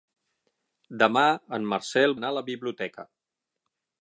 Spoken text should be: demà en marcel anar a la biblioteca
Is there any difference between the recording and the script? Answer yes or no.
no